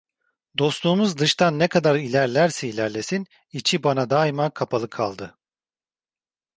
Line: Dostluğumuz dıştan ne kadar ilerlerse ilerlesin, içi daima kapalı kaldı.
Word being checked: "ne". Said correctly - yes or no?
yes